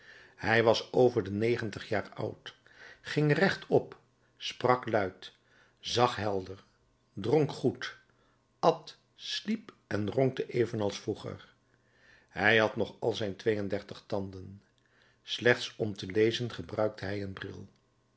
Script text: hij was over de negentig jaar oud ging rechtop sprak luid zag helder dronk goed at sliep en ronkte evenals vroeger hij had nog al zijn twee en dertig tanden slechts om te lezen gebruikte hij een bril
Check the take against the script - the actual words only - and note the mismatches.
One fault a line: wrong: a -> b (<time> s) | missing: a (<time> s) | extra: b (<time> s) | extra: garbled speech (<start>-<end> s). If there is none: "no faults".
no faults